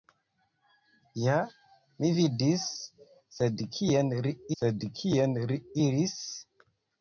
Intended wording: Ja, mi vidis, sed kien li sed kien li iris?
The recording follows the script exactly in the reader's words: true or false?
true